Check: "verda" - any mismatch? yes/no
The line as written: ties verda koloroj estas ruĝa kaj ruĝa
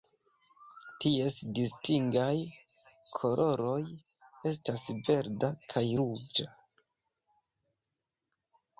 yes